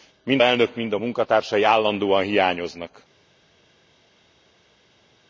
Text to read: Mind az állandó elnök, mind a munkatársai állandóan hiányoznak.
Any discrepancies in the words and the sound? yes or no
yes